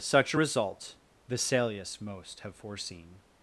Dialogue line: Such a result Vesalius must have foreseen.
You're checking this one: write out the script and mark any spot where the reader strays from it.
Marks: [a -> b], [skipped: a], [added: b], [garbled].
Such a result Vesalius [must -> most] have foreseen.